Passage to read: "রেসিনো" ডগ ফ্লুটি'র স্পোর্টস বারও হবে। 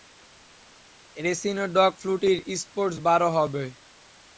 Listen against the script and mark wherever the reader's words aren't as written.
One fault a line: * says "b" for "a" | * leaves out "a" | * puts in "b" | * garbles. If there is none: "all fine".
all fine